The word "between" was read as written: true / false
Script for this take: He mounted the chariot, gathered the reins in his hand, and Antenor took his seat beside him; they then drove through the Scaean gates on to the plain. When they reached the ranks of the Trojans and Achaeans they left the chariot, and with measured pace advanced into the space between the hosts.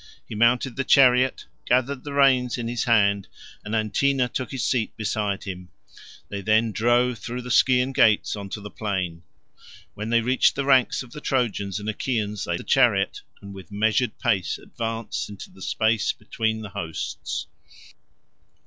true